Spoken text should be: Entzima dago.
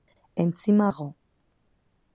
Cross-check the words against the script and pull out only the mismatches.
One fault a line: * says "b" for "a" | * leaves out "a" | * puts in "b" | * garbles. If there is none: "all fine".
all fine